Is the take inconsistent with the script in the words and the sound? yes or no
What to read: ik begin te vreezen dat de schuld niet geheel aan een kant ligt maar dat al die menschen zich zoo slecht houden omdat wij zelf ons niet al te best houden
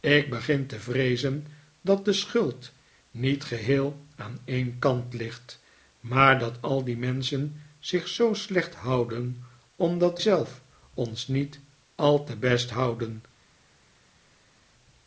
yes